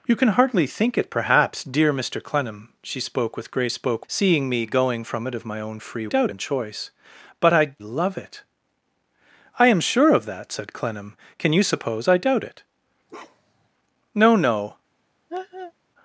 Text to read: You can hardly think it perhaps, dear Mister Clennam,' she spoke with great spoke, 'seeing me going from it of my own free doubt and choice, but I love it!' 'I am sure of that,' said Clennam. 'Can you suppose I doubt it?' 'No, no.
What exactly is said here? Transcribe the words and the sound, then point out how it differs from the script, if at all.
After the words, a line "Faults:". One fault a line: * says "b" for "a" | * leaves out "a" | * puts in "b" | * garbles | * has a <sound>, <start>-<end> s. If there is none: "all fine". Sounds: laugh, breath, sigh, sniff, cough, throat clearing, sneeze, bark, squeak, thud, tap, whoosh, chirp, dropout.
You can hardly think it perhaps, dear Mister Clennam,' she spoke with great spoke, 'seeing me going from it of my own free doubt and choice, but I love it!' 'I am sure of that,' said Clennam. 'Can you suppose I doubt it?' 'No, no.
Faults:
* has a bark, 13.1-13.7 s
* has a laugh, 15.3-15.7 s